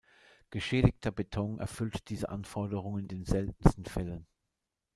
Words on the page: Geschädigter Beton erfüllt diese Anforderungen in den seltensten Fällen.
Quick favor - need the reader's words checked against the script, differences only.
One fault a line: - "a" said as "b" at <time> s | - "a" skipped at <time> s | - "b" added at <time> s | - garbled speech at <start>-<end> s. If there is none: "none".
- "in" skipped at 3.1 s